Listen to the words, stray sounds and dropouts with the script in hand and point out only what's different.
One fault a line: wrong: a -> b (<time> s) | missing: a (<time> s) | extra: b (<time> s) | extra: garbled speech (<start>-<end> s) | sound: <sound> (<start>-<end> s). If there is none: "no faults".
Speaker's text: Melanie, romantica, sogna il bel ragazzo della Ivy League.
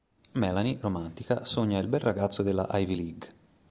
no faults